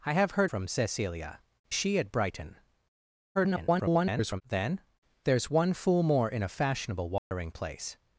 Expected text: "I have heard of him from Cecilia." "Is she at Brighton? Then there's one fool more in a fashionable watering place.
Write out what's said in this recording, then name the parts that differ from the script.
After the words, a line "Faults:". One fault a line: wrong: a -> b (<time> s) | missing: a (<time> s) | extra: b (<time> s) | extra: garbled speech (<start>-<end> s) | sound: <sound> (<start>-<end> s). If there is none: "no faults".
"I have heard from Cecilia." "She at Brighton? [garbled] Then there's one fool more in a fashionable watering place.
Faults:
missing: of him (0.5 s)
missing: Is (1.4 s)
extra: garbled speech (3.3-4.4 s)
sound: dropout (7.2-7.3 s)